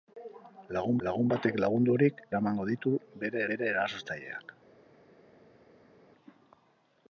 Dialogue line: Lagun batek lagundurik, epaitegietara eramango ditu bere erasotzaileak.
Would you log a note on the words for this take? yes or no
yes